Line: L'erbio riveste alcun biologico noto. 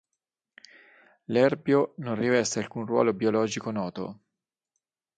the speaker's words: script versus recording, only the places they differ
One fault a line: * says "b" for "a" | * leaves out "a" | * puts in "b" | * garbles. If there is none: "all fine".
* puts in "non"
* puts in "ruolo"